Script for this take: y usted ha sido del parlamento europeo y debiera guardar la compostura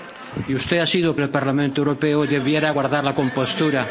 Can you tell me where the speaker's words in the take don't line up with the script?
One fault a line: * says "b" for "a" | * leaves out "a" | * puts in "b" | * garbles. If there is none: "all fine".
all fine